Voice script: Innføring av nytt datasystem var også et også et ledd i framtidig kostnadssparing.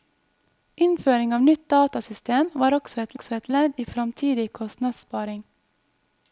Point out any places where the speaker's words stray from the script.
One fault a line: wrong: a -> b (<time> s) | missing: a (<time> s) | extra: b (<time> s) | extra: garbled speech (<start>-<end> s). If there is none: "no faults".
no faults